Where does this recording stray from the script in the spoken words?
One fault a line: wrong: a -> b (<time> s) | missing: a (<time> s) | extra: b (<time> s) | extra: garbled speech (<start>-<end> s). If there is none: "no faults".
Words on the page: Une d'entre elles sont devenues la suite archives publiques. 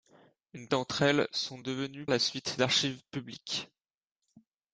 no faults